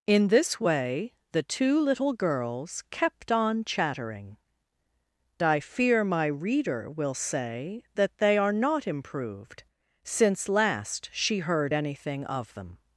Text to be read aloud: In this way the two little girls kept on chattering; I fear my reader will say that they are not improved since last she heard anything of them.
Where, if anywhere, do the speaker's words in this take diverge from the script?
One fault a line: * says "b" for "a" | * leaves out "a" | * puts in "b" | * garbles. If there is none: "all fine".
all fine